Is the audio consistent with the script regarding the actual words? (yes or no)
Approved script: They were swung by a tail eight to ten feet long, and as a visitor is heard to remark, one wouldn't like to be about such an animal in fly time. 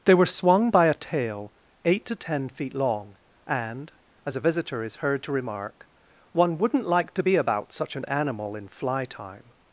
yes